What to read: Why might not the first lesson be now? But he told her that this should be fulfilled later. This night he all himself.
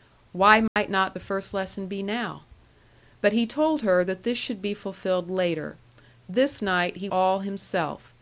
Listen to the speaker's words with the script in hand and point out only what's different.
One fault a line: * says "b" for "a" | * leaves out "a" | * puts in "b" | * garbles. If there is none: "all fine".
all fine